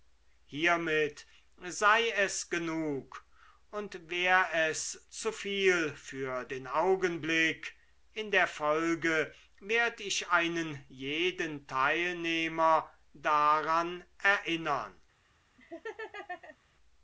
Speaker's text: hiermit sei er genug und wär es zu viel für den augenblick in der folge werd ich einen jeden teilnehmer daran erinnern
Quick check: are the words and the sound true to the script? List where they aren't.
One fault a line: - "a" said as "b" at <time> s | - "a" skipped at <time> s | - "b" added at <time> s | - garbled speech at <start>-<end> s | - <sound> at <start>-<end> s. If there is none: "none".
- "er" said as "es" at 2.1 s
- laugh at 15.6-16.6 s